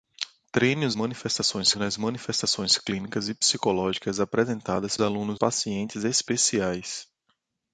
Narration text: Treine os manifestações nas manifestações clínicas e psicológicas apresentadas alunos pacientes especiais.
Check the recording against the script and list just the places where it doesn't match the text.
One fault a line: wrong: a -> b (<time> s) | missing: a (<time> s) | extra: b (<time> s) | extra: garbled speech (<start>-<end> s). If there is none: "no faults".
no faults